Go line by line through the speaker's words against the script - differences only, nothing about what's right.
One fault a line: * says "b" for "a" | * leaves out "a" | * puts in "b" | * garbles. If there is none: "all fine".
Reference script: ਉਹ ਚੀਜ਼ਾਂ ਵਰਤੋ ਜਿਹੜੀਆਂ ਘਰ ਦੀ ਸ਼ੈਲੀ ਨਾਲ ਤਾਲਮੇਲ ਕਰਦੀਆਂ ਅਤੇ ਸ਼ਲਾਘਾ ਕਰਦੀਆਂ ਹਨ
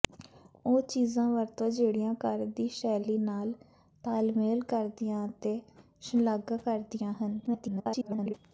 * garbles